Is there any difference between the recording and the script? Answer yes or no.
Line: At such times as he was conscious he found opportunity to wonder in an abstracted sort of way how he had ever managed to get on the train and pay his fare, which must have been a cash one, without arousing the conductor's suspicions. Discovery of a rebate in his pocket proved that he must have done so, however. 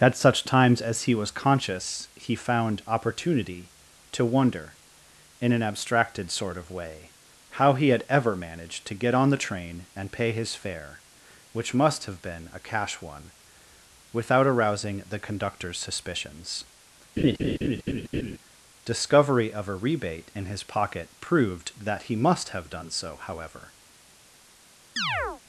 no